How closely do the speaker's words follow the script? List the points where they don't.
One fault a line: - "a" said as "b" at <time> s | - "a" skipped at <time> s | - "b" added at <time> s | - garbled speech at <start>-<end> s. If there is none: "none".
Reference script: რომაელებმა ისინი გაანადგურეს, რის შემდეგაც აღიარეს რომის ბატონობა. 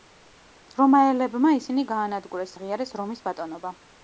- "რის შემდეგაც" skipped at 2.5 s